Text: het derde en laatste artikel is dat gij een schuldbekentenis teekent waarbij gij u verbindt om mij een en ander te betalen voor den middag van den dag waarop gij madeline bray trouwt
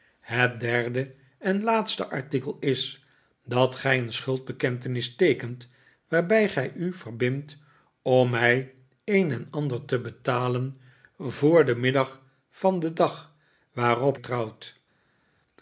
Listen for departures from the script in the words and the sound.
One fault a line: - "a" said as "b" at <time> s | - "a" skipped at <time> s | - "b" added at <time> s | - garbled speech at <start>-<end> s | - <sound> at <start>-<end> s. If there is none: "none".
- "gij madeline bray" skipped at 14.2 s